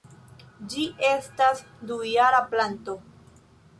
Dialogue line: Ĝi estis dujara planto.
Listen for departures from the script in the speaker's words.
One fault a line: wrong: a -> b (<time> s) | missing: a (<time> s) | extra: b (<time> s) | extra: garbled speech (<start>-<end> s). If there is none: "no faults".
wrong: estis -> estas (1.1 s)